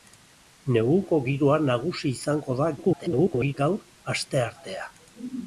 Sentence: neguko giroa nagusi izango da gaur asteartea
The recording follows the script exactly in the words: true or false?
false